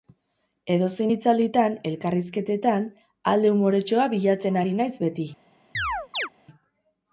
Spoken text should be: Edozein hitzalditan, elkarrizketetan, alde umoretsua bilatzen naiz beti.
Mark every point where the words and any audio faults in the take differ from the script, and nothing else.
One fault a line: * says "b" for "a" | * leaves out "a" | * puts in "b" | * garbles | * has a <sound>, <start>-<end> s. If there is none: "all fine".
* puts in "ari"
* has a chirp, 5.7-6.3 s